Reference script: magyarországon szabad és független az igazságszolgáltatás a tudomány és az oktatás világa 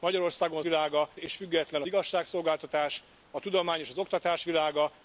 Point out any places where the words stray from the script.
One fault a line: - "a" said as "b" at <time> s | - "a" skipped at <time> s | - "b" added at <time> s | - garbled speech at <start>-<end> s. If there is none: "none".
- "szabad" said as "világa" at 0.6 s
- "az" skipped at 1.8 s